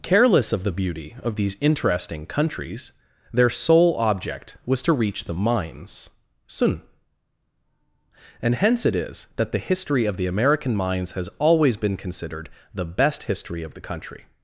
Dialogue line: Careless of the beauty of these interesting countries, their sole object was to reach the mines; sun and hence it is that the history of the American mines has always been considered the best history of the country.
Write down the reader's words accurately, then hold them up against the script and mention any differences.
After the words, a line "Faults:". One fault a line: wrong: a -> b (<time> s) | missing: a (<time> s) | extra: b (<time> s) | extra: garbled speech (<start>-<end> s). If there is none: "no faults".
Careless of the beauty of these interesting countries, their sole object was to reach the mines; sun and hence it is that the history of the American mines has always been considered the best history of the country.
Faults:
no faults